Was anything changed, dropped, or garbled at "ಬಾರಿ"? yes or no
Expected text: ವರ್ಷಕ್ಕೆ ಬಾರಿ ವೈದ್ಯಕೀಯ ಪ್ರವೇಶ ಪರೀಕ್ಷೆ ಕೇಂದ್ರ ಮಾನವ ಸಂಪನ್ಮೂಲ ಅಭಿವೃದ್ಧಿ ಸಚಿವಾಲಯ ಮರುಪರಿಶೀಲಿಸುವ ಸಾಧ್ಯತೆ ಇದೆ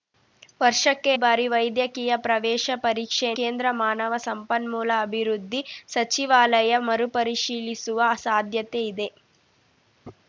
no